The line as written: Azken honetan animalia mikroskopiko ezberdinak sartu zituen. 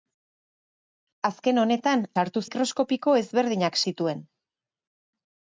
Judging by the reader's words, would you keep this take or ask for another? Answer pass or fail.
fail